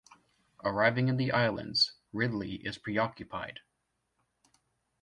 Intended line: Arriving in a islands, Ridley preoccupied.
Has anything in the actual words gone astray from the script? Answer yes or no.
yes